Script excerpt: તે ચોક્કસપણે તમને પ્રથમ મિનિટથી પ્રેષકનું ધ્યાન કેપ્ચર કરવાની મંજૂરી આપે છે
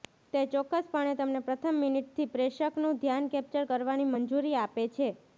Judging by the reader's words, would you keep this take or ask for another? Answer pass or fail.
pass